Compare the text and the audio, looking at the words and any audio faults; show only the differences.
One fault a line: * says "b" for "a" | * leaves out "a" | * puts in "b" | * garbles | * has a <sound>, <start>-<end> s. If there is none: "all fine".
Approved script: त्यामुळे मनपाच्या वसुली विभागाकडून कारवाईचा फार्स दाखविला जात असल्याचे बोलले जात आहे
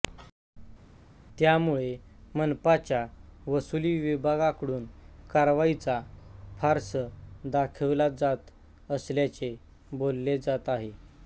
all fine